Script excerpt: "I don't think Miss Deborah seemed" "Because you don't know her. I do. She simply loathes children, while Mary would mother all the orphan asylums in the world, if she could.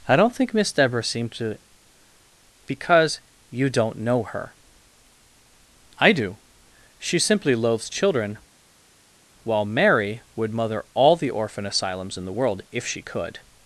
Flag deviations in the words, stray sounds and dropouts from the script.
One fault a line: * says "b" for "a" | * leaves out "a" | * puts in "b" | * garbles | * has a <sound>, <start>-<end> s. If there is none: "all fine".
* puts in "to"